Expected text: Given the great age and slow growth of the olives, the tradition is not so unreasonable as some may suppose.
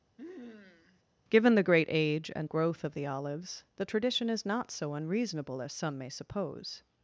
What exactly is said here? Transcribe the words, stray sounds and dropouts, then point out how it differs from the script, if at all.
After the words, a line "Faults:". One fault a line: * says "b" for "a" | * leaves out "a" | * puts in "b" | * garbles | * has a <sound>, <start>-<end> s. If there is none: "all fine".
Given the great age and growth of the olives, the tradition is not so unreasonable as some may suppose.
Faults:
* has a sniff, 0.2-1.0 s
* leaves out "slow"